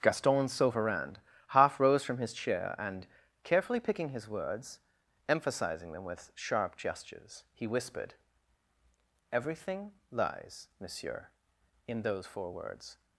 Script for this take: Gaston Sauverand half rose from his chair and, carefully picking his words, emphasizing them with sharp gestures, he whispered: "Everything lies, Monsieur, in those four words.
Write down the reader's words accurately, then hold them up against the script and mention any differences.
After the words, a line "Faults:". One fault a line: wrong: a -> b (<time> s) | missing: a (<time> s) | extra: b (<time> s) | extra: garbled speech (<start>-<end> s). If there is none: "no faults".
Gaston Sauverand half rose from his chair and, carefully picking his words, emphasizing them with sharp gestures, he whispered: "Everything lies, Monsieur, in those four words.
Faults:
no faults